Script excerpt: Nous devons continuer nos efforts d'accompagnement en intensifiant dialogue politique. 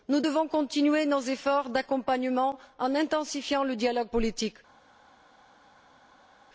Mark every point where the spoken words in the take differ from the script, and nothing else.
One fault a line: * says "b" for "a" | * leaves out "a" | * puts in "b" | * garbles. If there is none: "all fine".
* puts in "le"